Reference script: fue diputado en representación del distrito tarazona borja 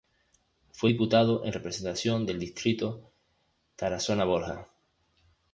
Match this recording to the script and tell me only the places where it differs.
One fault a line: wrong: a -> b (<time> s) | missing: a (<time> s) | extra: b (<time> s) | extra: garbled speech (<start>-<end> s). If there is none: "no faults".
no faults